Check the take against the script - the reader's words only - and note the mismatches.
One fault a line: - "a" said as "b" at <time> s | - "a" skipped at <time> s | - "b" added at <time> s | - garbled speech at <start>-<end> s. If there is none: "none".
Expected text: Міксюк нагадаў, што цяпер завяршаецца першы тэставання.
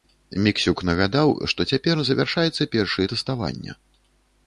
none